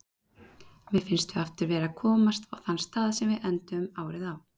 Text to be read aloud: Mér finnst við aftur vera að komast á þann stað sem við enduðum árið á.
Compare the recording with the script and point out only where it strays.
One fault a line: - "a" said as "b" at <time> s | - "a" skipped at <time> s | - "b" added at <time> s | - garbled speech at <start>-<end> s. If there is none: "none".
none